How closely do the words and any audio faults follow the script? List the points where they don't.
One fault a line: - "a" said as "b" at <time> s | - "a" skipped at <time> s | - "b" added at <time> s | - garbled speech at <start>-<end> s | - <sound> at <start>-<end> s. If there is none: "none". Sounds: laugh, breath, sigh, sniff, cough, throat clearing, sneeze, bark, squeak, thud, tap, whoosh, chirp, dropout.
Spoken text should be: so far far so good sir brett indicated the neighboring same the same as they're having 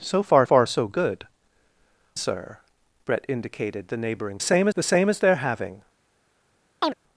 - chirp at 6.8-6.9 s